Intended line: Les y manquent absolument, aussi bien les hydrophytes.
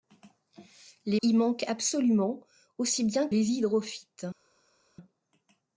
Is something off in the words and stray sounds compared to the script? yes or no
no